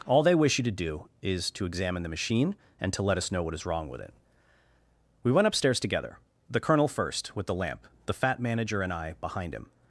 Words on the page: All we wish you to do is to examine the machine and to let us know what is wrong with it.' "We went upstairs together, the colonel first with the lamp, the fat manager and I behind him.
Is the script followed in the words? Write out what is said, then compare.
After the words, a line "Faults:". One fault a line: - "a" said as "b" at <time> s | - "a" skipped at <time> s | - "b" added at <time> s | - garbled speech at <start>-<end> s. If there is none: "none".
All they wish you to do is to examine the machine and to let us know what is wrong with it.' "We went upstairs together, the colonel first with the lamp, the fat manager and I behind him.
Faults:
- "we" said as "they" at 0.2 s